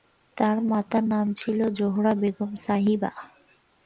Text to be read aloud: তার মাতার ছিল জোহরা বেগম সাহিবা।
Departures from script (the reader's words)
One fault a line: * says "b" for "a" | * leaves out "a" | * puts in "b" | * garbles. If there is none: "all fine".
* puts in "নাম"